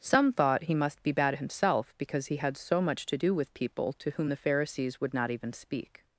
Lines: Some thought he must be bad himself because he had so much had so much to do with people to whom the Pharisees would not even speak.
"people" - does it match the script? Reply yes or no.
yes